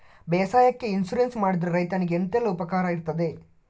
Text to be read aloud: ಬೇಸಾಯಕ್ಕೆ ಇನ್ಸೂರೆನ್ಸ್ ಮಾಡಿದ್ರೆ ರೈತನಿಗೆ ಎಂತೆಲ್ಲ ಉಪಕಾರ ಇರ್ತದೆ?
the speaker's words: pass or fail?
pass